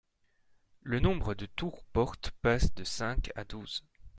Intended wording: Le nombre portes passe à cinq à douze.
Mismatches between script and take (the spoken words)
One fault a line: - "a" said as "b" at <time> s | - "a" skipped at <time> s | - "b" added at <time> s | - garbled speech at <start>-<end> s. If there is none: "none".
- "de tours" added at 1.3 s
- "à" said as "de" at 2.7 s